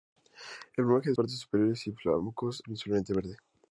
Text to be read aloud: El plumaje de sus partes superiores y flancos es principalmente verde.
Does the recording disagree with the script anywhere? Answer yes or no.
yes